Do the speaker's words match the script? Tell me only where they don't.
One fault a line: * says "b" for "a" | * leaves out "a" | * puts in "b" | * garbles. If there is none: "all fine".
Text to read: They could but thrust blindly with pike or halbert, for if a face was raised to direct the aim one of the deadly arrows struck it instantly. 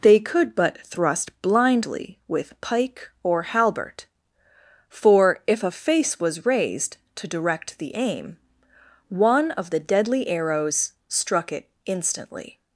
all fine